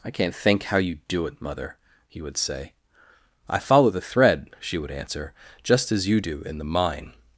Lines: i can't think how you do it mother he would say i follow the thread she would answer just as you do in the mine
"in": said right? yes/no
yes